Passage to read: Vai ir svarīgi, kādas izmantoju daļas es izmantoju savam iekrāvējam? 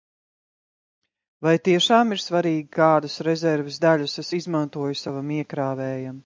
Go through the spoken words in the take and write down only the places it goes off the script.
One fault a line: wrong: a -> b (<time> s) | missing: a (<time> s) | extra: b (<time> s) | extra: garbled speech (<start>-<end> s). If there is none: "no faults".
extra: tiešām (1.7 s)
wrong: izmantoju -> rezerves (3.2 s)